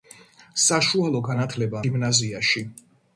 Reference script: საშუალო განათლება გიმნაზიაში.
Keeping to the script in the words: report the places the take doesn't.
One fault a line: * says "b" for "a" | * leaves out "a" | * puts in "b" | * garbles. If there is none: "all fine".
all fine